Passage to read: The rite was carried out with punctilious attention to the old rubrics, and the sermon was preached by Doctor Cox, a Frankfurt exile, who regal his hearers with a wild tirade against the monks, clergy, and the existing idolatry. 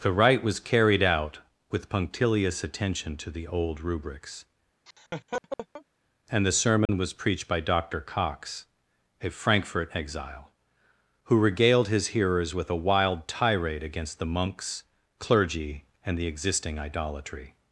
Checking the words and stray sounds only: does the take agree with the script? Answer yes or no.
no